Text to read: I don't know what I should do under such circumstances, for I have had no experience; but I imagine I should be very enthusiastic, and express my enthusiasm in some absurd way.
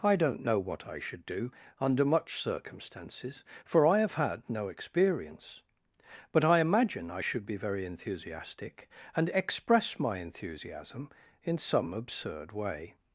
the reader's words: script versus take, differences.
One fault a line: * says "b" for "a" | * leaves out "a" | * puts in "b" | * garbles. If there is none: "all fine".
* says "much" for "such"